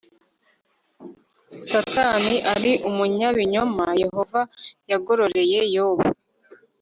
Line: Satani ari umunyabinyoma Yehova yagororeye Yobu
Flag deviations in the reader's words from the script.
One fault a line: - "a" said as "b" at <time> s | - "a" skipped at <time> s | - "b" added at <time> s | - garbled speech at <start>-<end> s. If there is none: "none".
none